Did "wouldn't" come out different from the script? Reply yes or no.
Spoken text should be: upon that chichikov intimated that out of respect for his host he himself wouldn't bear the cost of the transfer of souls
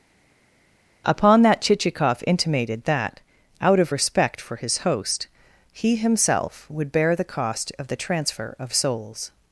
yes